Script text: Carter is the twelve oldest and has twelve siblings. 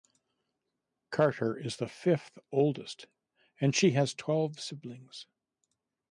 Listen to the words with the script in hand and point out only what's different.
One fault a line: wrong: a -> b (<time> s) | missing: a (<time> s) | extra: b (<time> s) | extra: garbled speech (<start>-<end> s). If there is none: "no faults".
wrong: twelve -> fifth (1.9 s)
extra: she (3.8 s)